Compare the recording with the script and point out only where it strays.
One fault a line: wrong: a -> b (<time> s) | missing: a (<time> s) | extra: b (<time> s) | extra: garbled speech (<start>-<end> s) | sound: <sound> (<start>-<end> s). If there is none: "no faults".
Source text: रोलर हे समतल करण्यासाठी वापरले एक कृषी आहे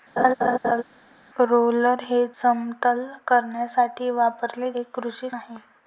sound: laugh (0.2-0.8 s)